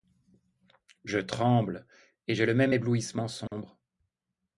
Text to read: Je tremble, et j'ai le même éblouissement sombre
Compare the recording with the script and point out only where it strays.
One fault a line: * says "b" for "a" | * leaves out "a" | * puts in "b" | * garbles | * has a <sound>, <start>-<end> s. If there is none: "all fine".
* has a dropout, 3.5-3.5 s